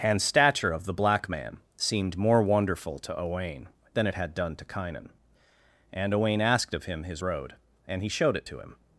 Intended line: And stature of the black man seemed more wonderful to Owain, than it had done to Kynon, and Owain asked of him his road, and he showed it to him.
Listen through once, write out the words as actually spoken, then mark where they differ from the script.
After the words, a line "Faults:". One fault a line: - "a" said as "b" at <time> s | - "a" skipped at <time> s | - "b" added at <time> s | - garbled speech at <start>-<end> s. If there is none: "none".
And stature of the black man seemed more wonderful to Owain, than it had done to Kynon, and Owain asked of him his road, and he showed it to him.
Faults:
none